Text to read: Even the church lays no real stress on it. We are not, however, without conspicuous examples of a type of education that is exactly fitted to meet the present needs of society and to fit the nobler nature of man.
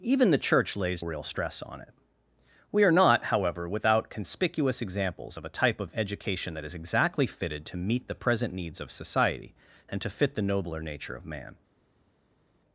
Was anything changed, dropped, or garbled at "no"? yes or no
yes